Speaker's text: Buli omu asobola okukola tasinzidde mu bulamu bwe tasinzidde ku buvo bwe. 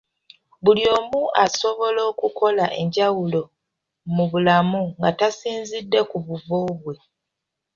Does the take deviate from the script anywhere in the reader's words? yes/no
yes